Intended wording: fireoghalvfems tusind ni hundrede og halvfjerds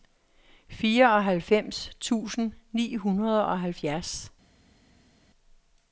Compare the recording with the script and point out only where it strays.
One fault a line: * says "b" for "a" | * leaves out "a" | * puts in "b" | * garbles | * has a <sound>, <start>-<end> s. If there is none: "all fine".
all fine